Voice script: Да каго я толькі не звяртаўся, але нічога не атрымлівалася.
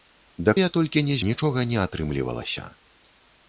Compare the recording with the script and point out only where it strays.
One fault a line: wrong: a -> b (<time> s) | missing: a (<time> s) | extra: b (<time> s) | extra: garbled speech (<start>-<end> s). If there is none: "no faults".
missing: каго (0.5 s)
missing: звяртаўся але (1.1 s)